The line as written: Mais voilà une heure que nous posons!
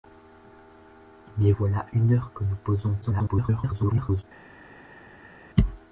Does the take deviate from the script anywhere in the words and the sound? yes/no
yes